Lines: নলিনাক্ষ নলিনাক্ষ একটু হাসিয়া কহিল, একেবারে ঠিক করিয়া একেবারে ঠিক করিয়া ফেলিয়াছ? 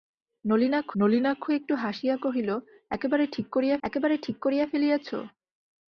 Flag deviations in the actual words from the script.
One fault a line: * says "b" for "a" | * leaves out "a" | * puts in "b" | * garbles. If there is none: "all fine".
all fine